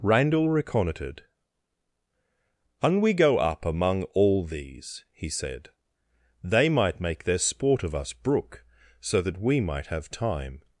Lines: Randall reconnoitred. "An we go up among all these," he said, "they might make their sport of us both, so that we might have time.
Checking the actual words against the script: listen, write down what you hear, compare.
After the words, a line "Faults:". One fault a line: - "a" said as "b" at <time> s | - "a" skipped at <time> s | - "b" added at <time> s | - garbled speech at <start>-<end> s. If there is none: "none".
Randall reconnoitred. "An we go up among all these," he said, "they might make their sport of us brook, so that we might have time.
Faults:
- "both" said as "brook" at 8.1 s